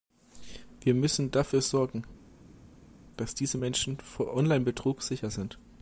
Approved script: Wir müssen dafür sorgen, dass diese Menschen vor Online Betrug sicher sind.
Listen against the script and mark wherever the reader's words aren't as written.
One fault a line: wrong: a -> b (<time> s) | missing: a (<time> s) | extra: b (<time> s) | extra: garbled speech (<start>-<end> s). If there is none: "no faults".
no faults